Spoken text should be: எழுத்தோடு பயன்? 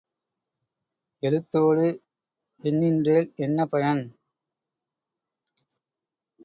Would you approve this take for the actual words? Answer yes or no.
no